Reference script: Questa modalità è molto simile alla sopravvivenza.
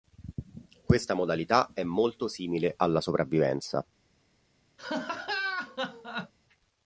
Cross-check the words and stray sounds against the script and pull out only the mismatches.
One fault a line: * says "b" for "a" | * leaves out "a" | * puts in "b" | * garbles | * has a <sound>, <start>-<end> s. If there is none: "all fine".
* has a laugh, 4.8-6.3 s